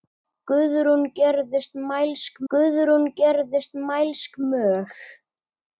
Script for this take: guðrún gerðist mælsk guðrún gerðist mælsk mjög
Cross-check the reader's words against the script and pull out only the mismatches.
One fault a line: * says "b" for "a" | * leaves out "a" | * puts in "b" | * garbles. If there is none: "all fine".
all fine